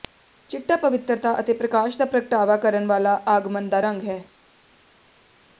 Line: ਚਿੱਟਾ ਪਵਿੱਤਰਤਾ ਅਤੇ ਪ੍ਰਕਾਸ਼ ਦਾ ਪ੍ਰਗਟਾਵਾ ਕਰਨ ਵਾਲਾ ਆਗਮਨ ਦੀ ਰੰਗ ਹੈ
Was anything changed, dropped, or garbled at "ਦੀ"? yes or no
yes